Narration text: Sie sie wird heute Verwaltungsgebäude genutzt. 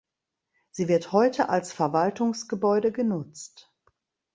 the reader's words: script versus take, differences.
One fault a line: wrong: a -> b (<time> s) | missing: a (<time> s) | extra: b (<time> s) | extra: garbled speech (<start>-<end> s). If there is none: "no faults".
missing: sie (0.9 s)
extra: als (1.5 s)